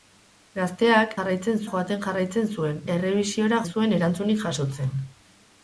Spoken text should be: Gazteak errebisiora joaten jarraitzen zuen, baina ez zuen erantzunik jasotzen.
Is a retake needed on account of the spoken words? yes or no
yes